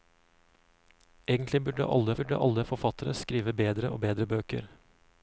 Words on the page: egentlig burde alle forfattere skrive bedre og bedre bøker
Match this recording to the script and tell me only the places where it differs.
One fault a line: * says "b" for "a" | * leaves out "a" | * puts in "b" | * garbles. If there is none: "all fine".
* puts in "burde alle"